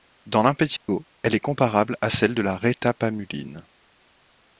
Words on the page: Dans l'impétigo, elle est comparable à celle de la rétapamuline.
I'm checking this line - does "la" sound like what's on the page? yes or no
yes